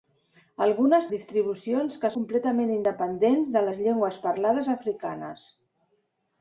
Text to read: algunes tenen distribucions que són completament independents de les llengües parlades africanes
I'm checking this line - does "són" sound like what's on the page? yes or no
no